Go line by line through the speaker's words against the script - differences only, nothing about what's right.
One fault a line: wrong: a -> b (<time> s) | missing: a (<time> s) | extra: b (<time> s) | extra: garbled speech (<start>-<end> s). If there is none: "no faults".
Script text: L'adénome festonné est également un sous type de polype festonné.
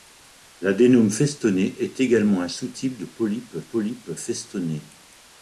extra: polype (3.6 s)